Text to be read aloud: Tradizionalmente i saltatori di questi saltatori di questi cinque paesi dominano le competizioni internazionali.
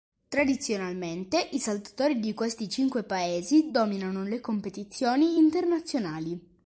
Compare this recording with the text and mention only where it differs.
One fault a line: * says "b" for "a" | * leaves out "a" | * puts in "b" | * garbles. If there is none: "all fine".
* leaves out "saltatori di questi"